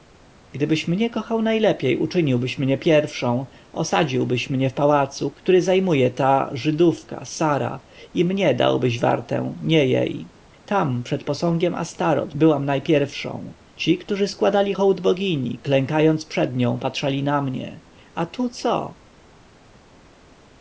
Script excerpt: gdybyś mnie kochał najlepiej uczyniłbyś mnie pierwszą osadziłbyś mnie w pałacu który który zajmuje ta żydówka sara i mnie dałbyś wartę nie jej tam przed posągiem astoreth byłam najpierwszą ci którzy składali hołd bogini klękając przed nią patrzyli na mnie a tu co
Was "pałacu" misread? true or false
false